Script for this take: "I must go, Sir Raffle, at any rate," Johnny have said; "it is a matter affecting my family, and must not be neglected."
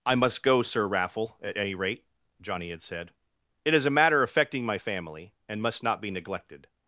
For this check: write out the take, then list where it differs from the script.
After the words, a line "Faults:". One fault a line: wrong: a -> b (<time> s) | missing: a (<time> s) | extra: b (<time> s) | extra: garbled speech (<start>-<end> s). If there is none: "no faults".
"I must go, Sir Raffle, at any rate," Johnny had said; "it is a matter affecting my family, and must not be neglected."
Faults:
wrong: have -> had (2.7 s)